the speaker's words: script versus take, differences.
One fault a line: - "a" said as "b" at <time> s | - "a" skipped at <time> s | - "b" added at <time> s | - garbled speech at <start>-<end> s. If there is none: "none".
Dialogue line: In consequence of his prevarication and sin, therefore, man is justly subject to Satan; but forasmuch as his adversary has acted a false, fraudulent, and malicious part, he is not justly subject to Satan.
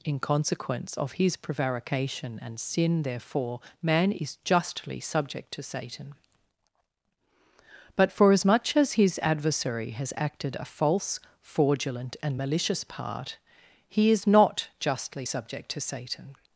none